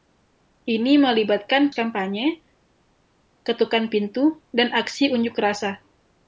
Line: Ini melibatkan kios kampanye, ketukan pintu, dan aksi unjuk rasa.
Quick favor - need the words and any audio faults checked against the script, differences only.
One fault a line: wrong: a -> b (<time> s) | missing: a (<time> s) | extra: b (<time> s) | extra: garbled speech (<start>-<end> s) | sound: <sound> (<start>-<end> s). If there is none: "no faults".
missing: kios (1.7 s)